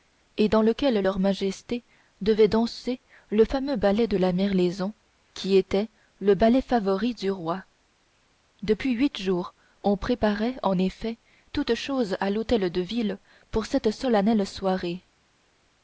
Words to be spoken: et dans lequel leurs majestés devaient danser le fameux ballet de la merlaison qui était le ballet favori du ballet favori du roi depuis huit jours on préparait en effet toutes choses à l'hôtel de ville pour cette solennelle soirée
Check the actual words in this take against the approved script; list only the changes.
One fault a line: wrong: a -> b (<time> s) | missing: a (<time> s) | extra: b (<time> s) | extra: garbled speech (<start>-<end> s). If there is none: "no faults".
missing: ballet favori du (7.3 s)